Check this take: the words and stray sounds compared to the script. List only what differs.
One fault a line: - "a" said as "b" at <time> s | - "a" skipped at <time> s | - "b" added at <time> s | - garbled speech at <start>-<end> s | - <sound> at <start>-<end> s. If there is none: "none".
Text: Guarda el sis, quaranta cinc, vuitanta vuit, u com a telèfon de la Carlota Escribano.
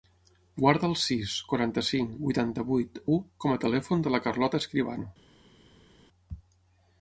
none